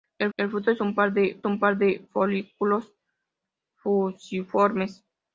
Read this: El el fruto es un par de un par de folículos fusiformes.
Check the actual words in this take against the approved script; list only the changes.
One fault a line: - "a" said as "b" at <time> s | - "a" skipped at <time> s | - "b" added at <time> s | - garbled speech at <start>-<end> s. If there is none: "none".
none